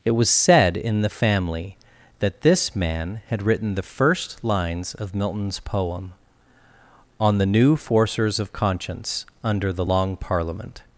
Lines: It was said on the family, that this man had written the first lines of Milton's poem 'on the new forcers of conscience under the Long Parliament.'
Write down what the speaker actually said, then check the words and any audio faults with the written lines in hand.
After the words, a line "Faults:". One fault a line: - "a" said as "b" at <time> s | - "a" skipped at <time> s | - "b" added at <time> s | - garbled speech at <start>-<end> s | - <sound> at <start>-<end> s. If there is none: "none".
It was said in the family, that this man had written the first lines of Milton's poem 'on the new forcers of conscience under the Long Parliament.'
Faults:
- "on" said as "in" at 0.8 s